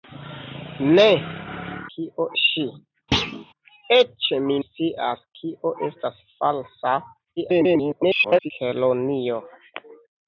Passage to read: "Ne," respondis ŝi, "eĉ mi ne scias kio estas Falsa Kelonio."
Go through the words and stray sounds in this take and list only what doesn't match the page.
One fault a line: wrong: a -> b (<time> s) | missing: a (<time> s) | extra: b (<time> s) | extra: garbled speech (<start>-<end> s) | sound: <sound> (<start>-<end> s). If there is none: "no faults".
wrong: respondis -> kio (2.0 s)
sound: thud (3.1-3.4 s)
missing: ne (4.6 s)
extra: garbled speech (7.4-8.5 s)